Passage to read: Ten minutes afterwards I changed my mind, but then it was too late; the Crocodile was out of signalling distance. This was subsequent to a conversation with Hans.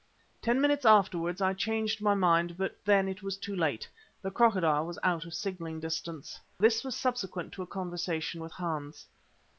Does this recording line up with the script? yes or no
yes